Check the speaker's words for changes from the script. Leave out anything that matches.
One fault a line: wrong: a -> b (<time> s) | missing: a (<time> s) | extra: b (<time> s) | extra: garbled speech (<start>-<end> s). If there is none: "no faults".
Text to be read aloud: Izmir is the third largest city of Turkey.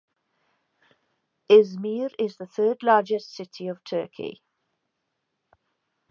no faults